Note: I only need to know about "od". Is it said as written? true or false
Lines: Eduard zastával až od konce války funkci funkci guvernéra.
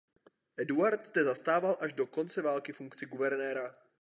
false